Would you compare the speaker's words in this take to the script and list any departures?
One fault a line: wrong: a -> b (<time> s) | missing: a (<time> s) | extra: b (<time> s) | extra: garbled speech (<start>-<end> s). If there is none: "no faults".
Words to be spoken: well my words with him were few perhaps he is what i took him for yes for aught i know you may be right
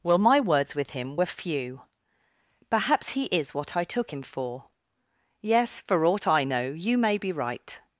no faults